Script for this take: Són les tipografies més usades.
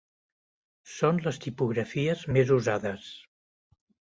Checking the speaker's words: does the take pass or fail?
pass